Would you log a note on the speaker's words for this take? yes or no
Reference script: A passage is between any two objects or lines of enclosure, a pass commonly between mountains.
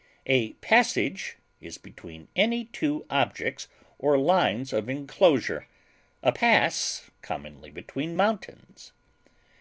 no